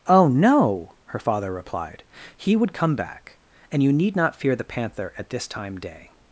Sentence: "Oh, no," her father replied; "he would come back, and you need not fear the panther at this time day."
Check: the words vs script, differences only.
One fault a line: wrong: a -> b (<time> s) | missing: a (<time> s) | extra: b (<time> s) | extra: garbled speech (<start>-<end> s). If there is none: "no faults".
no faults